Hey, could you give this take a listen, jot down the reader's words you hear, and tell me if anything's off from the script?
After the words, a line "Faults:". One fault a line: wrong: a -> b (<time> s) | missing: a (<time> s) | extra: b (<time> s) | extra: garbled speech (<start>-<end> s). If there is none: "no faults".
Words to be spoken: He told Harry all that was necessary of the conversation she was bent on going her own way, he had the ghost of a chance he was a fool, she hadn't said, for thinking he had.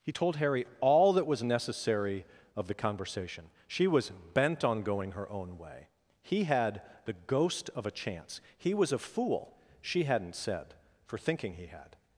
He told Harry all that was necessary of the conversation she was bent on going her own way, he had the ghost of a chance he was a fool, she hadn't said, for thinking he had.
Faults:
no faults